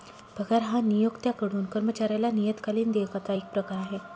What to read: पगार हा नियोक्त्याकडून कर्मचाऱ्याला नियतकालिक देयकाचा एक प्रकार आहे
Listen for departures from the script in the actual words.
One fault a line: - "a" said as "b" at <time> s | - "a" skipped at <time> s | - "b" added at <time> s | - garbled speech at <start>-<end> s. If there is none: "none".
none